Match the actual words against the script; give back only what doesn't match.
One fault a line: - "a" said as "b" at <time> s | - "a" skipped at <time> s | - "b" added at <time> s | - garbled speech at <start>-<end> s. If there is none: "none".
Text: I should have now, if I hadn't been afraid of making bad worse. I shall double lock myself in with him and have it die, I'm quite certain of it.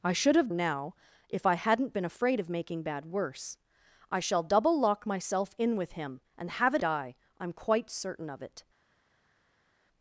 none